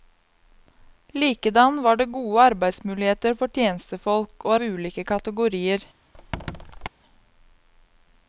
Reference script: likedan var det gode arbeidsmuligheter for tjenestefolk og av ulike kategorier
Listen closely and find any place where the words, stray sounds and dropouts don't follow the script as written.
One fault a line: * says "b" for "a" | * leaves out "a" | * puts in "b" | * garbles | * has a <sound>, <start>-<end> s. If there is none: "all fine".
* has a squeak, 6.1-6.9 s